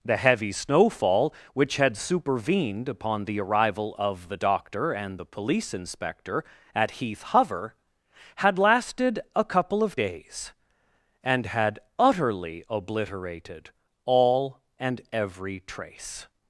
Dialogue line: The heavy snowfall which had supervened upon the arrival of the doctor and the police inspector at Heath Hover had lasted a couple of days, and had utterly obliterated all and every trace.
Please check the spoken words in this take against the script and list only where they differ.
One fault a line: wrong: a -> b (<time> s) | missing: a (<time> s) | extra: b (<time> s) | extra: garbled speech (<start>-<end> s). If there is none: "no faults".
no faults